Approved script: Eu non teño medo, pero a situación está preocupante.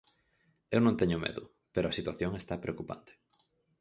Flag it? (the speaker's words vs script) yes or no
no